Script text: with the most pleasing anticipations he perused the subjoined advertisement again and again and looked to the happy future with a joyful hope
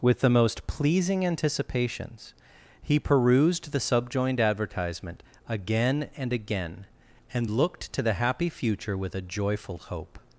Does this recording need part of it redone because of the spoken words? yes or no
no